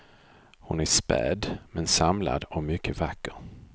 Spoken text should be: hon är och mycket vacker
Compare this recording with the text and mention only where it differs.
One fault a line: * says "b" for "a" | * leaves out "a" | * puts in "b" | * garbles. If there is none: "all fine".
* puts in "späd men samlad"